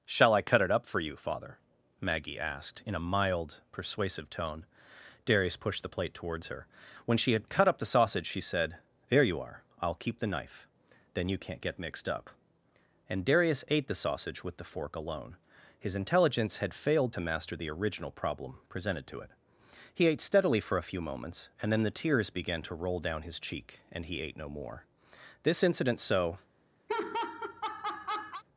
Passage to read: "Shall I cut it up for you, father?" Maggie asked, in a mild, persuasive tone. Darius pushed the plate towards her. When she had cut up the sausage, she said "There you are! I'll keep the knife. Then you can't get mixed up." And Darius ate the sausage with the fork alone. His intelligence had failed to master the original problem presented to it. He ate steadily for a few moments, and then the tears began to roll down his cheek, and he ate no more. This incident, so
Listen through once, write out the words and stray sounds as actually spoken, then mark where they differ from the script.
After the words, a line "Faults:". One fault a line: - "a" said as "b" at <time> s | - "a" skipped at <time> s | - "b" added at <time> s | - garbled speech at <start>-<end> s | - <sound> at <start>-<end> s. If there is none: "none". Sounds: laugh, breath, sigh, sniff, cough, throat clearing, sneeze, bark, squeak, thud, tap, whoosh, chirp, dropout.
"Shall I cut it up for you, father?" Maggie asked, in a mild, persuasive tone. Darius pushed the plate towards her. When she had cut up the sausage, she said "There you are! I'll keep the knife. Then you can't get mixed up." And Darius ate the sausage with the fork alone. His intelligence had failed to master the original problem presented to it. He ate steadily for a few moments, and then the tears began to roll down his cheek, and he ate no more. This incident, so
Faults:
- laugh at 26.9-28.4 s